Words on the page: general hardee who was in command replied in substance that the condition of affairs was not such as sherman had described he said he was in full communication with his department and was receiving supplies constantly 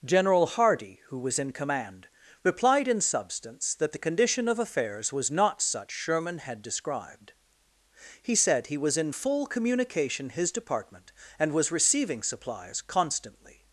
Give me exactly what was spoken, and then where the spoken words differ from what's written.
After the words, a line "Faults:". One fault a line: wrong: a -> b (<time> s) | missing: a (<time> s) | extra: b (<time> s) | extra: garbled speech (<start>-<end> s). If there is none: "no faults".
general hardee who was in command replied in substance that the condition of affairs was not such sherman had described he said he was in full communication his department and was receiving supplies constantly
Faults:
missing: as (5.9 s)
missing: with (10.3 s)